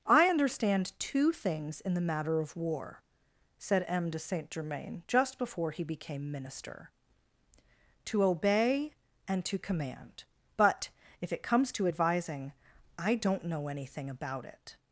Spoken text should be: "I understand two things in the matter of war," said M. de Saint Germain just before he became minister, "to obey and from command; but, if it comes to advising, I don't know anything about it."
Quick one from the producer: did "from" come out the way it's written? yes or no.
no